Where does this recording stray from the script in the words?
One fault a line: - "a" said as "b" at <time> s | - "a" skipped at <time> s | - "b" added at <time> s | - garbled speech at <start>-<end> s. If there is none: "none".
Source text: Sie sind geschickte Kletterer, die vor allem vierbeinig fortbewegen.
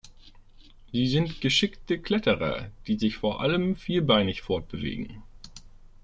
- "sich" added at 3.0 s